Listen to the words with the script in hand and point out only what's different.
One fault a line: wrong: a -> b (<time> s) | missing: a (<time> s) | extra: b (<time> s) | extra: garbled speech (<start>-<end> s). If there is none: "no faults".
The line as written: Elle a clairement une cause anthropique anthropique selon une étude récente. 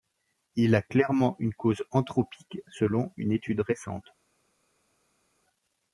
wrong: Elle -> Il (0.6 s)
missing: anthropique (2.6 s)